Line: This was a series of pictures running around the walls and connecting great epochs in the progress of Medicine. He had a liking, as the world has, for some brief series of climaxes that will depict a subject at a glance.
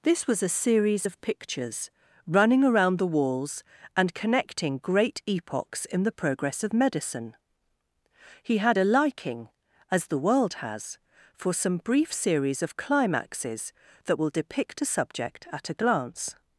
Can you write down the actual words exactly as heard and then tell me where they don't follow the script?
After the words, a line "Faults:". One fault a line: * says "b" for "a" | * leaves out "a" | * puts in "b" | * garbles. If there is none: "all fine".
This was a series of pictures running around the walls and connecting great epochs in the progress of Medicine. He had a liking, as the world has, for some brief series of climaxes that will depict a subject at a glance.
Faults:
all fine